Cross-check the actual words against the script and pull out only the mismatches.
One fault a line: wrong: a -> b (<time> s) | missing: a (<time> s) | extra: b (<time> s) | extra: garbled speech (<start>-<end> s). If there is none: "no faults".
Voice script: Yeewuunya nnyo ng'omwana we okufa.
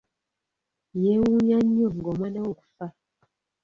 no faults